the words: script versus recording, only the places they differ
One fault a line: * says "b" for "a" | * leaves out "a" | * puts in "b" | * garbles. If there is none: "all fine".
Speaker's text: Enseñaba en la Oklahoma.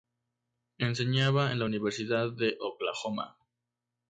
* puts in "Universidad de"